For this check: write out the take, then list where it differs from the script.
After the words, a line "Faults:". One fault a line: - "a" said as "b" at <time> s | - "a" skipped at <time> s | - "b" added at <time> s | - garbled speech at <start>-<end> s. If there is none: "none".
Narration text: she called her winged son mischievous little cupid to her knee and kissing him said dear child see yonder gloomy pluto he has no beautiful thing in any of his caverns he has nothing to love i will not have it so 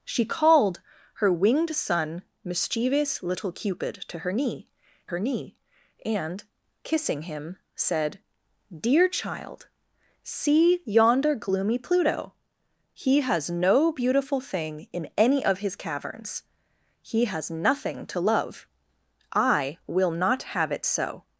she called her winged son mischievous little cupid to her knee her knee and kissing him said dear child see yonder gloomy pluto he has no beautiful thing in any of his caverns he has nothing to love i will not have it so
Faults:
- "her knee" added at 5.1 s